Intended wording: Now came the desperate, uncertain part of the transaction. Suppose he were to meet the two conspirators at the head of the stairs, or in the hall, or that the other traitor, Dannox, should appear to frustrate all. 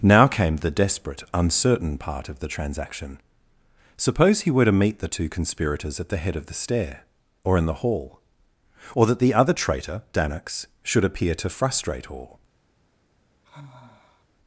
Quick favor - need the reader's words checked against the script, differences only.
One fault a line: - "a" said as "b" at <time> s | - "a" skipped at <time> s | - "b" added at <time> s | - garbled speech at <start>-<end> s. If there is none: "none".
- "stairs" said as "stair" at 6.5 s